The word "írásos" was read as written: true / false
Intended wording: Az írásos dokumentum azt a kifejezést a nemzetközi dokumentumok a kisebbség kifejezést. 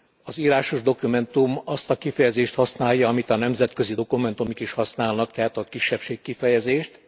true